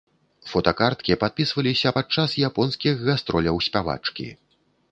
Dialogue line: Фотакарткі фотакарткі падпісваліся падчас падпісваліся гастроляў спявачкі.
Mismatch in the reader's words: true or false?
true